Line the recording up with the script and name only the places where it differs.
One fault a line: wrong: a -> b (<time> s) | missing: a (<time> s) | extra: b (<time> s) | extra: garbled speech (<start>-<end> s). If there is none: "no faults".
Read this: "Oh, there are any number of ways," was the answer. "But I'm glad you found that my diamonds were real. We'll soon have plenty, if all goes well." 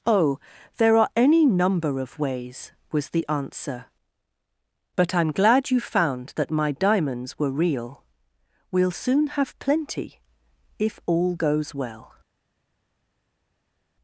no faults